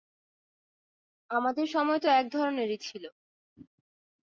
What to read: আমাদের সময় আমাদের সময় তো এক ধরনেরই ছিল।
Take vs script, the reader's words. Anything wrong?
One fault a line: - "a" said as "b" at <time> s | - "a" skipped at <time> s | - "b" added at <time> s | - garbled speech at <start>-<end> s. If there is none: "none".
- "আমাদের সময়" skipped at 2.0 s